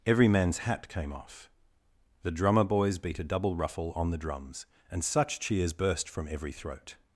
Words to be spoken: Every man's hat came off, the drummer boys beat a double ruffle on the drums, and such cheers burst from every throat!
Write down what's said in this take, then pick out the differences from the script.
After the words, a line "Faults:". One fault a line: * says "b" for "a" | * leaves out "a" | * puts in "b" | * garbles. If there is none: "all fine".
Every man's hat came off, the drummer boys beat a double ruffle on the drums, and such cheers burst from every throat!
Faults:
all fine